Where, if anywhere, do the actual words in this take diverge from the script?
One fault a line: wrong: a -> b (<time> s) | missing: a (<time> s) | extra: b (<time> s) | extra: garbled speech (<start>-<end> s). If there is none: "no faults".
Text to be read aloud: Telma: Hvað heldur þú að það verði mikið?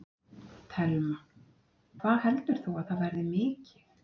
no faults